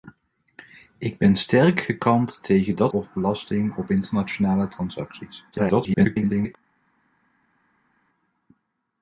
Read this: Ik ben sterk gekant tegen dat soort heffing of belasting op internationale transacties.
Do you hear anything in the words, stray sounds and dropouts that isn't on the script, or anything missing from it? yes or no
yes